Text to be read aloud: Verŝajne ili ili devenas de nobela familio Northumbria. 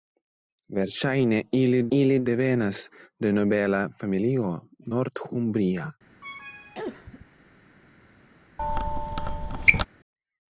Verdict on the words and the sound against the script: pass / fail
fail